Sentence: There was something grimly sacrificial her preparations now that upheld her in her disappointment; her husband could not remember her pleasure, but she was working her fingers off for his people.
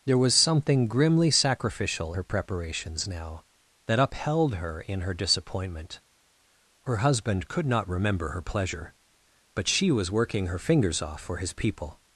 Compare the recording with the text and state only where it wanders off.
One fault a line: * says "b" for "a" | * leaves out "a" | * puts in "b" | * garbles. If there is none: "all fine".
all fine